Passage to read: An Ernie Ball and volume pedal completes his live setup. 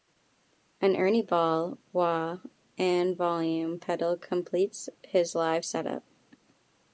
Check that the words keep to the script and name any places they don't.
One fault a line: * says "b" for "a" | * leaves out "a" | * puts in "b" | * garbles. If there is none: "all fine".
* puts in "wah"